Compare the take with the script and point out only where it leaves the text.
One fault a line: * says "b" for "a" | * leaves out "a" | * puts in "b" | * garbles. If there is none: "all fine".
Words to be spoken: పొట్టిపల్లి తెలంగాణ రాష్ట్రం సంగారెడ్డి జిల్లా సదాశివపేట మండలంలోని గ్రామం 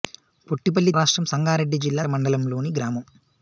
* leaves out "తెలంగాణ"
* leaves out "సదాశివపేట"